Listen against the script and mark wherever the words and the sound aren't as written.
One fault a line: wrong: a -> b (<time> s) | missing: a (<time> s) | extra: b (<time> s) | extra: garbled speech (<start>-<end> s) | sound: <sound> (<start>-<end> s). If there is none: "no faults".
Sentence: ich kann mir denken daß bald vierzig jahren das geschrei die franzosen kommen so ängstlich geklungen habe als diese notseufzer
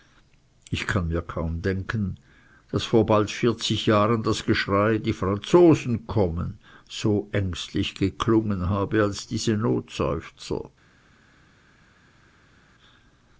extra: kaum (1.2 s)
extra: vor (2.8 s)